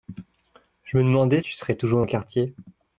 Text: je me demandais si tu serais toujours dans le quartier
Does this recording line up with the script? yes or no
no